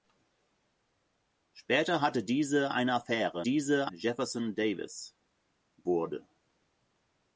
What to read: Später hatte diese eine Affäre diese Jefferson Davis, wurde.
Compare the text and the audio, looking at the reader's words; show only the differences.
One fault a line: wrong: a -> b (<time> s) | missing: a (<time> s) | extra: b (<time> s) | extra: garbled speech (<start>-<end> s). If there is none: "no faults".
no faults